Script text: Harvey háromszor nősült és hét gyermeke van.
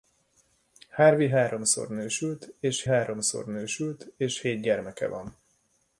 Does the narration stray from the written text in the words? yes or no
yes